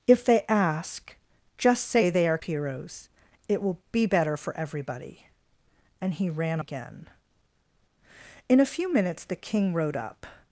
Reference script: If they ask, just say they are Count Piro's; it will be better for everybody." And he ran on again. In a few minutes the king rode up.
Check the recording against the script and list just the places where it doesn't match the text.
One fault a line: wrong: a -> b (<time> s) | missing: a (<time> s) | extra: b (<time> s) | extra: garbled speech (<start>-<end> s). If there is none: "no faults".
missing: Count (2.4 s)
missing: on (6.6 s)